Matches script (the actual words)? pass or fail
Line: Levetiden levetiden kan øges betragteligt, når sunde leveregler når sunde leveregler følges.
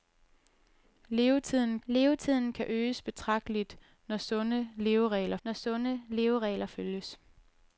pass